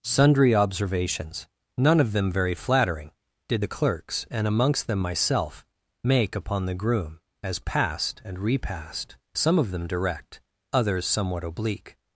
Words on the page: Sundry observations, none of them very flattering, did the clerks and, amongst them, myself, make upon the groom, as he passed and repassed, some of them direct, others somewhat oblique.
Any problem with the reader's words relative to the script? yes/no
yes